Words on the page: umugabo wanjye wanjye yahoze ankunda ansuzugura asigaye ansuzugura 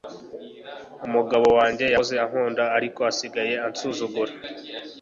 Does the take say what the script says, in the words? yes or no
no